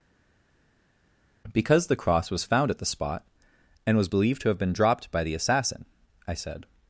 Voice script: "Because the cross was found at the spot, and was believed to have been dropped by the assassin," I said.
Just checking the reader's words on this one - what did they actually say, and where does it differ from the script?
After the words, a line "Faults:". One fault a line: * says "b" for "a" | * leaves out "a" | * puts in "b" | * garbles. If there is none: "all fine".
"Because the cross was found at the spot, and was believed to have been dropped by the assassin," I said.
Faults:
all fine